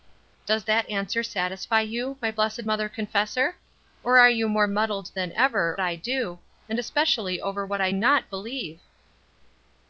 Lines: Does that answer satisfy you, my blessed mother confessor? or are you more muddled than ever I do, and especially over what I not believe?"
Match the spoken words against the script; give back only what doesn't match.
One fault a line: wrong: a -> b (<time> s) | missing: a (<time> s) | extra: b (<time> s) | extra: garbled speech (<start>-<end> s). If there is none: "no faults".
no faults